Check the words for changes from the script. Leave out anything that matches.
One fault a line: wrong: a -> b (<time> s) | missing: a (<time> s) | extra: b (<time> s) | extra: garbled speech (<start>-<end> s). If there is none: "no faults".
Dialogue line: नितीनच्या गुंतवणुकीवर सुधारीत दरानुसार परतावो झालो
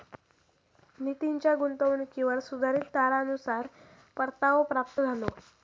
extra: प्राप्त (4.7 s)